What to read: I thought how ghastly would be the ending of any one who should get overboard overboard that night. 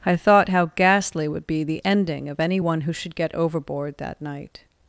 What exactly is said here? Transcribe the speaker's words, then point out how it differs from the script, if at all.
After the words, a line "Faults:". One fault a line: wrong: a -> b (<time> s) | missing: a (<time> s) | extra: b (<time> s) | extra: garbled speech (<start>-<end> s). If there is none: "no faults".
I thought how ghastly would be the ending of any one who should get overboard that night.
Faults:
missing: overboard (4.0 s)